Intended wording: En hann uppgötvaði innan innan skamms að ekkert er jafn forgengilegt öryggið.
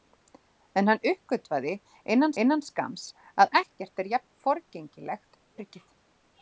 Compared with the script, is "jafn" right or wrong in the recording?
right